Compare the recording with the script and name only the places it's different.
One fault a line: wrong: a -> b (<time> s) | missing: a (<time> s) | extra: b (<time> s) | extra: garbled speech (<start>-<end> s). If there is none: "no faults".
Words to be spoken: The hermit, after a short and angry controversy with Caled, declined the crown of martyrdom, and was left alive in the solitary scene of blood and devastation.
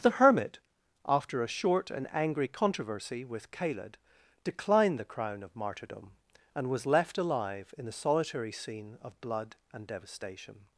no faults